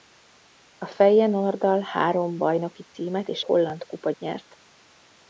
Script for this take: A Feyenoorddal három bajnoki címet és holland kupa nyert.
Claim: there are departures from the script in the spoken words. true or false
false